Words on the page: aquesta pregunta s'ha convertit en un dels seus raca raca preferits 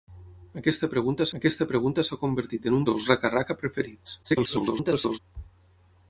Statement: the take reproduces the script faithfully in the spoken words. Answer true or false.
false